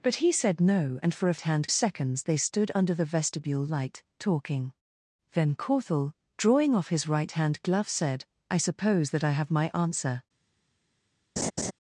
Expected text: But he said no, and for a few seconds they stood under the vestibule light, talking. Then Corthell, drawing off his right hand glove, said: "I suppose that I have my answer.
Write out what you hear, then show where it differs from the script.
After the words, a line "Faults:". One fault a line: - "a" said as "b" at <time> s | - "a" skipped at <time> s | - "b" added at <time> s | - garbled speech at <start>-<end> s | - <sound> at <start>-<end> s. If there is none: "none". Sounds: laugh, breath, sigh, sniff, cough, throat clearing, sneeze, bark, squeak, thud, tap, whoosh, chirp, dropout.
But he said no, and for a hand seconds they stood under the vestibule light, talking. Then Corthell, drawing off his right hand glove, said: "I suppose that I have my answer.
Faults:
- "few" said as "hand" at 1.4 s
- laugh at 11.4-11.7 s